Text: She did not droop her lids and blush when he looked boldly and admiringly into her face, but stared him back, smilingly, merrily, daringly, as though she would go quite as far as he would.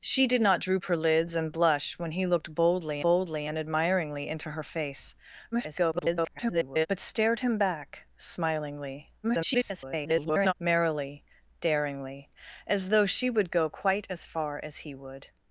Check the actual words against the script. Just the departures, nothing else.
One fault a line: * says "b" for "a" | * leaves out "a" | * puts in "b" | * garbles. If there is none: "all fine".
* puts in "boldly"
* garbles
* garbles